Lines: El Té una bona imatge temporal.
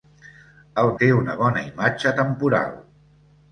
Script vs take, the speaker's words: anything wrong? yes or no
no